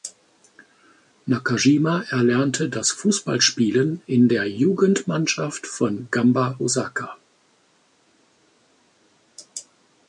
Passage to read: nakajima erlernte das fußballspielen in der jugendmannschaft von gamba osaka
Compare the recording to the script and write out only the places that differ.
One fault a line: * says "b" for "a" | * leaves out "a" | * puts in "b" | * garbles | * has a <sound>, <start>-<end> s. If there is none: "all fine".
all fine